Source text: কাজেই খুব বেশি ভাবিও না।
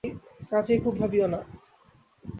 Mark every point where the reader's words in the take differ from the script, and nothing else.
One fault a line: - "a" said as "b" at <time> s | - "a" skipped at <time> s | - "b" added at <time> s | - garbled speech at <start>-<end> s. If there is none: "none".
- "বেশি" skipped at 0.9 s